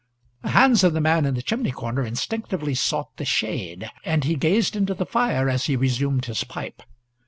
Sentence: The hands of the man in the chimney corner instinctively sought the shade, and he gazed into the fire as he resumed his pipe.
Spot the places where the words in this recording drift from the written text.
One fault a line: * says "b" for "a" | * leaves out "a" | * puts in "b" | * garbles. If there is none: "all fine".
all fine